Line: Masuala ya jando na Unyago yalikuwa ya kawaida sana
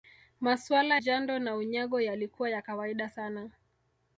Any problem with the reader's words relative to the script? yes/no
yes